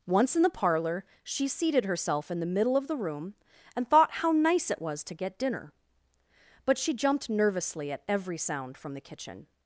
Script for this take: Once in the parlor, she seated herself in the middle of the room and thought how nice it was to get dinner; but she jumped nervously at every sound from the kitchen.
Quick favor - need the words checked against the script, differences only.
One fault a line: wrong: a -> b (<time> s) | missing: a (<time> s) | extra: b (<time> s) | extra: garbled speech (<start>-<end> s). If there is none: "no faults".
no faults